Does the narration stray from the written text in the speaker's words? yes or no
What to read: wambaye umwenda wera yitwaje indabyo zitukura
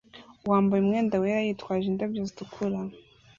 no